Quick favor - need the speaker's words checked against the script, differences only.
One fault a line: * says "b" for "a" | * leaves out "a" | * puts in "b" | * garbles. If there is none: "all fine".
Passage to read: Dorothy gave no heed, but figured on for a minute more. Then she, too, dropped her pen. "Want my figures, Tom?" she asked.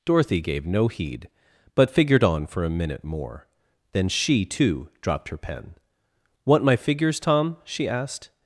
all fine